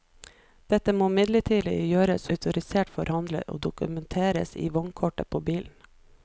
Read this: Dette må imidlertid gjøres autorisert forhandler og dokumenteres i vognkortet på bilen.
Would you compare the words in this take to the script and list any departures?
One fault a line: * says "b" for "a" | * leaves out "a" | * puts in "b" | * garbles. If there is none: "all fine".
all fine